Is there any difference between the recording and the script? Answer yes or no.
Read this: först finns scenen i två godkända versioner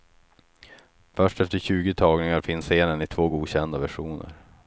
yes